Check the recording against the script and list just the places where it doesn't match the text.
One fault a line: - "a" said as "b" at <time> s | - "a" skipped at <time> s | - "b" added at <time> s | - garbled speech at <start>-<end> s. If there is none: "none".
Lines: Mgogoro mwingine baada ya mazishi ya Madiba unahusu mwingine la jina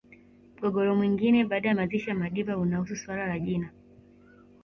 - "mwingine" said as "suala" at 3.0 s